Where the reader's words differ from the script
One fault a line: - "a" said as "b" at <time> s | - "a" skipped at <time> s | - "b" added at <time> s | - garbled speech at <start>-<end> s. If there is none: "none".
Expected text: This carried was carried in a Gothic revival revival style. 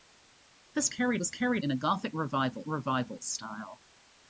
none